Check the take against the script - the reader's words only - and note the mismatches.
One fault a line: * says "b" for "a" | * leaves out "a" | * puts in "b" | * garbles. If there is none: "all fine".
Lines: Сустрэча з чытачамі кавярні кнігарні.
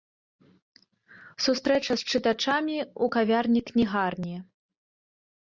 * puts in "ў"